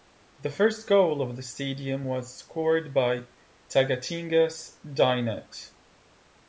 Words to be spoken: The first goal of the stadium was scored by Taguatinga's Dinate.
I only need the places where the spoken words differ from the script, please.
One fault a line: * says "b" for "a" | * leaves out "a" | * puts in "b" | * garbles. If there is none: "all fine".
all fine